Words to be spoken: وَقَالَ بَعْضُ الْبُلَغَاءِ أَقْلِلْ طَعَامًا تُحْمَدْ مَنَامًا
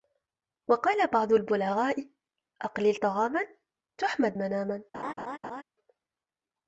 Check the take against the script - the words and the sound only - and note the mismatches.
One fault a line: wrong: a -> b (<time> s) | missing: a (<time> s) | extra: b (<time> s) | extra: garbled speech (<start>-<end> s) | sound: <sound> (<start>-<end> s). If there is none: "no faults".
sound: laugh (4.9-5.6 s)